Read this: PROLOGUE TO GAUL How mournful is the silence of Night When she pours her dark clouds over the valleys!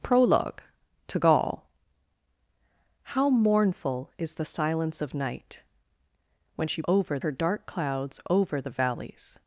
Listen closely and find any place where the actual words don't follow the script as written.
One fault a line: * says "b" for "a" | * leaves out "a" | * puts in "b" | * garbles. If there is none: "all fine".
* says "over" for "pours"